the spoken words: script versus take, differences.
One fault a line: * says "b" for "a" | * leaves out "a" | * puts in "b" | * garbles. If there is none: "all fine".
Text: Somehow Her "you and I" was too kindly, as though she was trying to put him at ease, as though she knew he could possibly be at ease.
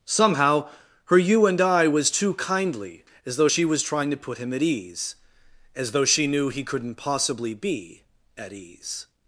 * says "couldn't" for "could"